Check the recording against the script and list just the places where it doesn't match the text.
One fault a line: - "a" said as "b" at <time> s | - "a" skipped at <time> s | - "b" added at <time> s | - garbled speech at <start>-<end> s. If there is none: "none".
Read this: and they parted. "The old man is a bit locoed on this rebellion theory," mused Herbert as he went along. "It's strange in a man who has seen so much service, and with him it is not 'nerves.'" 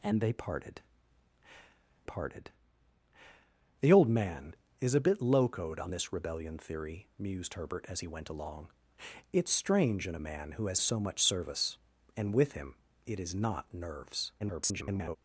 - "parted" added at 2.0 s
- "seen" skipped at 10.8 s
- garbled speech at 14.4-15.2 s